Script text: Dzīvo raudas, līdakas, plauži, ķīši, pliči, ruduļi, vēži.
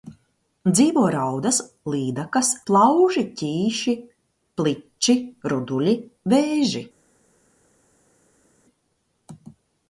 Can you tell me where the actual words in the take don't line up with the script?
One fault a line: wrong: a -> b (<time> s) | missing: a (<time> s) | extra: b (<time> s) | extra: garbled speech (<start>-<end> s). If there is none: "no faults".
no faults